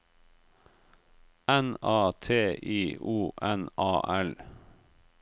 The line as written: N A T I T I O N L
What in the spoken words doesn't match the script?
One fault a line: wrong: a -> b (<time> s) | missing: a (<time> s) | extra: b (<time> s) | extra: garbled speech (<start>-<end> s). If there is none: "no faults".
missing: T I (3.0 s)
extra: A (3.8 s)